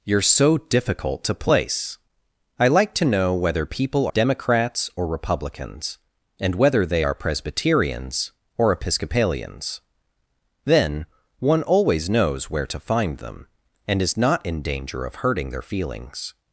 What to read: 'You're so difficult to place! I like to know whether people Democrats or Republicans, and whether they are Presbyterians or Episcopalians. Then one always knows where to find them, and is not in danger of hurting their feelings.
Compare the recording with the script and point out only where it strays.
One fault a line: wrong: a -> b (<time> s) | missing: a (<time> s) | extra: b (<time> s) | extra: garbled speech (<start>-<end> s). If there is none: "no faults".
no faults